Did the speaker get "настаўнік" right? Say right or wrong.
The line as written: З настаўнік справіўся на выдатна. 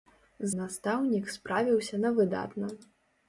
right